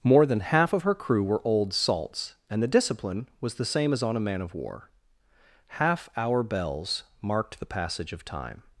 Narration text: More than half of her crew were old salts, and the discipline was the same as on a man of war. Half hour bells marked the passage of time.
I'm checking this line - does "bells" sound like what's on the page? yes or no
yes